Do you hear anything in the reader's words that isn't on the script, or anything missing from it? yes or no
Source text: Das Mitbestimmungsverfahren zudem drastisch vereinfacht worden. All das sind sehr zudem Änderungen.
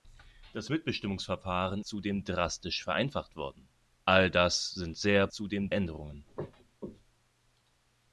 no